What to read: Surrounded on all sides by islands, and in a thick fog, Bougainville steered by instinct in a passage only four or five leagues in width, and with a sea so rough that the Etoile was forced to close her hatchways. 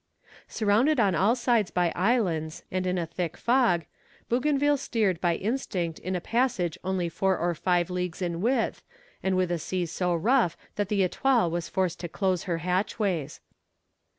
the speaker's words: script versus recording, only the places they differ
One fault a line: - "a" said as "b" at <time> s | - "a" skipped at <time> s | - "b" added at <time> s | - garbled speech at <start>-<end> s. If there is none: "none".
none